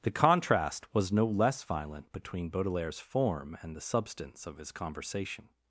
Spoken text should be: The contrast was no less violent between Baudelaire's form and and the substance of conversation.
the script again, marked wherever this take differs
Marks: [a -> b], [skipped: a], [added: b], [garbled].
The contrast was no less violent between Baudelaire's form and [skipped: and] the substance of [added: his] conversation.